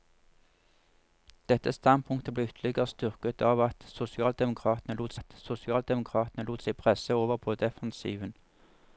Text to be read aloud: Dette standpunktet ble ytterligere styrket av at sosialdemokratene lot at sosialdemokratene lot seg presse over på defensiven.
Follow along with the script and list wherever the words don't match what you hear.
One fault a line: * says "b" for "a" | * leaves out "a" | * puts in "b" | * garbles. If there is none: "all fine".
all fine